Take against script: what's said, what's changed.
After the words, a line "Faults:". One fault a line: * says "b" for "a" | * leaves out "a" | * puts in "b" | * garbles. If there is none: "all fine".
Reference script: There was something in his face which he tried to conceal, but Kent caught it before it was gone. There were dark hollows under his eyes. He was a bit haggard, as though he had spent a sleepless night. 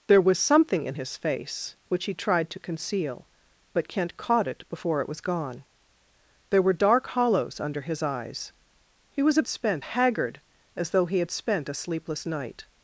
There was something in his face which he tried to conceal, but Kent caught it before it was gone. There were dark hollows under his eyes. He was a spent haggard, as though he had spent a sleepless night.
Faults:
* says "spent" for "bit"